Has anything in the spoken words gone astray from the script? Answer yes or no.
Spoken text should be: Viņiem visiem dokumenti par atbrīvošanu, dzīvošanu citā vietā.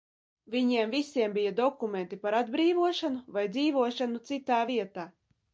yes